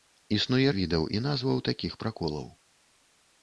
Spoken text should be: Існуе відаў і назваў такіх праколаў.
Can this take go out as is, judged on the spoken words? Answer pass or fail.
pass